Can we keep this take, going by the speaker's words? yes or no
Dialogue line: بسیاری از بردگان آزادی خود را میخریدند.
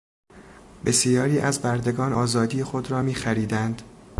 yes